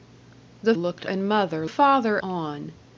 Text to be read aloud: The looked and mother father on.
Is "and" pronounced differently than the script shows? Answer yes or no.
no